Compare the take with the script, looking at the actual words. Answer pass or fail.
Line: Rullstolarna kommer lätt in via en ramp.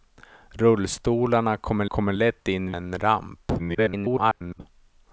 fail